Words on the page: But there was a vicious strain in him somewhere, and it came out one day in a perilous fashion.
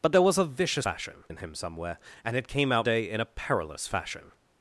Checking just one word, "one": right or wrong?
wrong